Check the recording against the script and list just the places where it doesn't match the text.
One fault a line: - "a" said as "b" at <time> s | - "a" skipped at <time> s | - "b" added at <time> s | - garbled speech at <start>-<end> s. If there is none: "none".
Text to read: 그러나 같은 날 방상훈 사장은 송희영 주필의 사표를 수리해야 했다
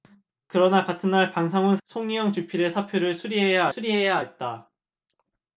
- "사장은" skipped at 1.8 s
- "수리해야" added at 3.7 s